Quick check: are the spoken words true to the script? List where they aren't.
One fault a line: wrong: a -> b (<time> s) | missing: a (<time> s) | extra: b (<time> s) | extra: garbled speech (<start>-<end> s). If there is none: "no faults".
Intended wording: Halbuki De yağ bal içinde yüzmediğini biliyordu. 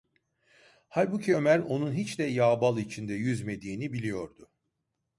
extra: Ömer onun hiç (1.3 s)